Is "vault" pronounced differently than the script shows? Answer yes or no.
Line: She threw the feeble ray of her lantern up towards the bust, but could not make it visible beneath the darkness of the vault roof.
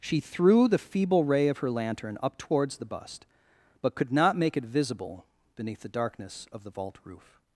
no